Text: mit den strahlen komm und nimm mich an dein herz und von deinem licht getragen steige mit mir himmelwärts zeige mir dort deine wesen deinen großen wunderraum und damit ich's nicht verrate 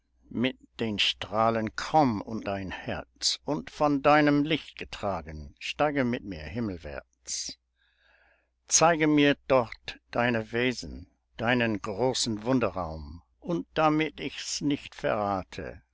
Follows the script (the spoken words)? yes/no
no